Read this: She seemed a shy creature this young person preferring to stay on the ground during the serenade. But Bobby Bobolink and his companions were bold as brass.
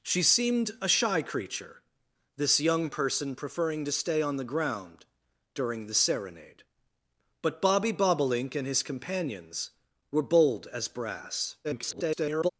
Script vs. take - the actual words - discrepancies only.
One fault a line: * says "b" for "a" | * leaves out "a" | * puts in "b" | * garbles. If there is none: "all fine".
* garbles